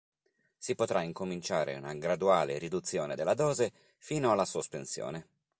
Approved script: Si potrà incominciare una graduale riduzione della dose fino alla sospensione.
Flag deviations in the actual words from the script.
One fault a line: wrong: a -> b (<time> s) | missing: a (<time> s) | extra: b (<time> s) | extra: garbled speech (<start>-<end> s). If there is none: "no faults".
no faults